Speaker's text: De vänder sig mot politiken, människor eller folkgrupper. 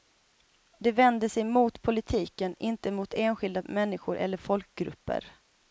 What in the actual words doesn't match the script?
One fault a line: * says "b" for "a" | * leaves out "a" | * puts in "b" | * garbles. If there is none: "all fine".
* puts in "inte mot enskilda"